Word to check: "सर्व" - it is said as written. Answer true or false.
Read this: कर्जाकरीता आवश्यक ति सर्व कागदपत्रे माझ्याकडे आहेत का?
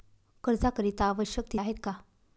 false